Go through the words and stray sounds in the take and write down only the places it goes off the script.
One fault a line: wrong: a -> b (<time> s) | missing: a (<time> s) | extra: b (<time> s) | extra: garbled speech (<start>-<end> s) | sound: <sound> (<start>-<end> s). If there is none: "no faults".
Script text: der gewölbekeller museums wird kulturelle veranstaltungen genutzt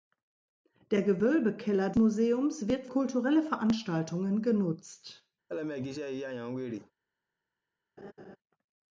sound: laugh (5.5-6.9 s)
sound: laugh (8.0-8.4 s)